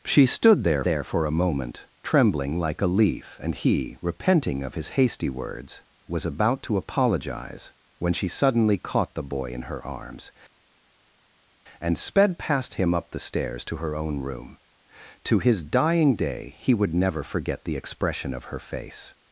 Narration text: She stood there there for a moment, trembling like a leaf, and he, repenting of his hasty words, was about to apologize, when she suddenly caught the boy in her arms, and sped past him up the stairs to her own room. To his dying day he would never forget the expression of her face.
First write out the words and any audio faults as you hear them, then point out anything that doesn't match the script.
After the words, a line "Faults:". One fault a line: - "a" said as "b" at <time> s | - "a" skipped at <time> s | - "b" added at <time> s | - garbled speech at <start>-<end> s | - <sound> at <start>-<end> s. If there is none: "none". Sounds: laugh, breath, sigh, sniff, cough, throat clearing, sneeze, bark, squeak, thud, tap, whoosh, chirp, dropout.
She stood there there for a moment, trembling like a leaf, and he, repenting of his hasty words, was about to apologize, when she suddenly caught the boy in her arms, and sped past him up the stairs to her own room. To his dying day he would never forget the expression of her face.
Faults:
none